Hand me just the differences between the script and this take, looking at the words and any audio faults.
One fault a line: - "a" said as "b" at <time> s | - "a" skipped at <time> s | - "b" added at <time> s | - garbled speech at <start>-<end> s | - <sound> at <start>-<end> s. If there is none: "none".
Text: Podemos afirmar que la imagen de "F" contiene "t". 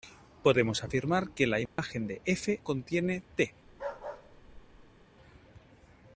- dropout at 1.7-1.8 s
- bark at 3.7-5.1 s